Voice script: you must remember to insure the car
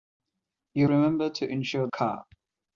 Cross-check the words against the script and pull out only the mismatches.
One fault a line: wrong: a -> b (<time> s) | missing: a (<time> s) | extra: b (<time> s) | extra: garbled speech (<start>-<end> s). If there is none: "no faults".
missing: must (0.9 s)
missing: the (1.9 s)